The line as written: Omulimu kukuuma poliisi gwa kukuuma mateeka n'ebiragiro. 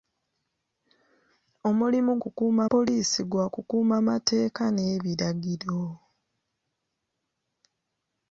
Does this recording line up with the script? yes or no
yes